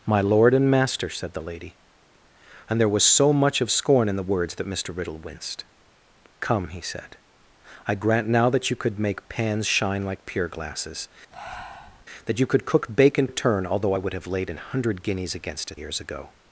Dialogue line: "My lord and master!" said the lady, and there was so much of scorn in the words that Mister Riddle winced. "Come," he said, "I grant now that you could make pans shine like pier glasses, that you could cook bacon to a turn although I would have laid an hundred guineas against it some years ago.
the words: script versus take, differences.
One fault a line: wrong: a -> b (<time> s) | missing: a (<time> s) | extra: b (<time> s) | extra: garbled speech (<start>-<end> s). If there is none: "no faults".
missing: to (13.3 s)
missing: some (15.8 s)